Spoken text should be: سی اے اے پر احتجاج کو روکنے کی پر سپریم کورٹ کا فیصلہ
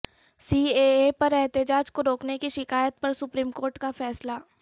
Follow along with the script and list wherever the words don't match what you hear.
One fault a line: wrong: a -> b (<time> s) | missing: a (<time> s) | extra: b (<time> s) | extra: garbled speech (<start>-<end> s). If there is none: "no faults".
extra: شکایت (2.5 s)